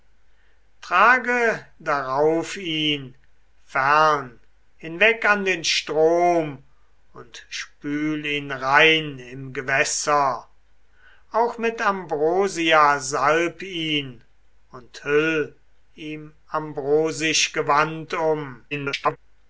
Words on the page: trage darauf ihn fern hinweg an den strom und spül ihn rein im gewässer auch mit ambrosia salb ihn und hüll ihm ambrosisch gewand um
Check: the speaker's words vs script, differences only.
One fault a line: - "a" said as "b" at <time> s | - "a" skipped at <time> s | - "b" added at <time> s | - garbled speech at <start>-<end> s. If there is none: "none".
- garbled speech at 18.7-19.2 s